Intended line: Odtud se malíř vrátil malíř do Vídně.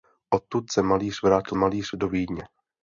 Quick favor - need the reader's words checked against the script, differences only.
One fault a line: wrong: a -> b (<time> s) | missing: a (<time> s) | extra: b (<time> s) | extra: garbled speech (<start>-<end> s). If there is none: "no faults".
no faults